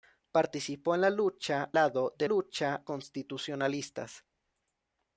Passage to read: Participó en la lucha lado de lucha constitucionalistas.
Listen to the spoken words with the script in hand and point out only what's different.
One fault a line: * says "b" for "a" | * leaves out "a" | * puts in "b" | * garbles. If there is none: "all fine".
all fine